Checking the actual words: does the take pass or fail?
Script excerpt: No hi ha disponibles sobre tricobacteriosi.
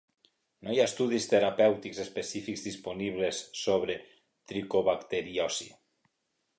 fail